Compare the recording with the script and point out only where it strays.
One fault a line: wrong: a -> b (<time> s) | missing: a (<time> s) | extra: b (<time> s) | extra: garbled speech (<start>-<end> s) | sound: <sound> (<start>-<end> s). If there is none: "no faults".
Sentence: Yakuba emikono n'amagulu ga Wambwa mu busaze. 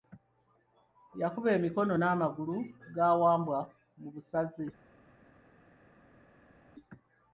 no faults